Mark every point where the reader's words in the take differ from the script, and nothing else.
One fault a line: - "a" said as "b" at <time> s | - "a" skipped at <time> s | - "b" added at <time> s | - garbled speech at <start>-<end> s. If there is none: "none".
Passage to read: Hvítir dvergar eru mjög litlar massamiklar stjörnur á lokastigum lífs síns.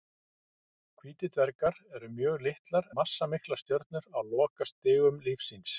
none